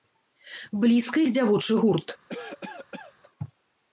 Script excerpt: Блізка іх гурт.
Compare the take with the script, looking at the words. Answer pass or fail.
fail